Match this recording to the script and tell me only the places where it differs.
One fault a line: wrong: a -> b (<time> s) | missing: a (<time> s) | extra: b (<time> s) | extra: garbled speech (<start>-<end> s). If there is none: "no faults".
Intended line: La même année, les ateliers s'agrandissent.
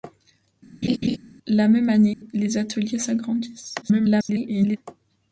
extra: garbled speech (3.8-4.8 s)